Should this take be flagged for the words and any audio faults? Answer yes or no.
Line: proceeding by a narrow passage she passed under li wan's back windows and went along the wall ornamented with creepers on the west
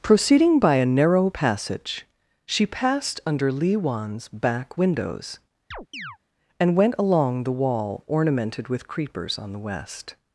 yes